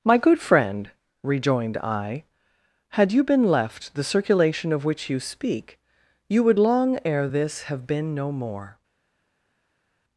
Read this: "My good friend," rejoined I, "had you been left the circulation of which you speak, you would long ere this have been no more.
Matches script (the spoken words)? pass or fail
pass